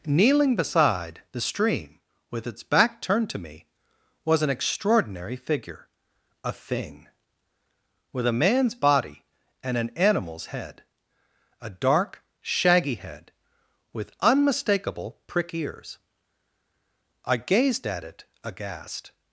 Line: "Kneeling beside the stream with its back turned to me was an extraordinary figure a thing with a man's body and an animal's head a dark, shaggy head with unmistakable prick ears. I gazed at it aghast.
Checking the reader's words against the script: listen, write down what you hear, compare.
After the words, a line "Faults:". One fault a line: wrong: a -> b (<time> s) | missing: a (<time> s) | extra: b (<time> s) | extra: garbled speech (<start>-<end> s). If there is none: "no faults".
"Kneeling beside the stream with its back turned to me was an extraordinary figure a thing with a man's body and an animal's head a dark, shaggy head with unmistakable prick ears. I gazed at it aghast.
Faults:
no faults